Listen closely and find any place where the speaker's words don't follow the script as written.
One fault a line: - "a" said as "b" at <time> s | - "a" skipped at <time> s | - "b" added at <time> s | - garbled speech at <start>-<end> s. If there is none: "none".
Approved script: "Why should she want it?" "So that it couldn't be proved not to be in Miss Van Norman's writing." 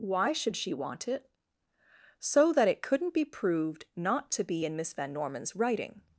none